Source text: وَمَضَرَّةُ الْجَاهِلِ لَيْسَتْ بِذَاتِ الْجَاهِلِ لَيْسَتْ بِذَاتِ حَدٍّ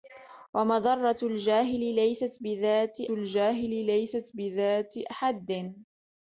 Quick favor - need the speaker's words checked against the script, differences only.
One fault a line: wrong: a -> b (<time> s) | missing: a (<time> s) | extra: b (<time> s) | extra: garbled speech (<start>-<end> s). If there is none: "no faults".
no faults